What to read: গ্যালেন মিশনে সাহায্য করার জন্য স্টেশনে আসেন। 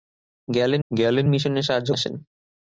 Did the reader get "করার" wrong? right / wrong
wrong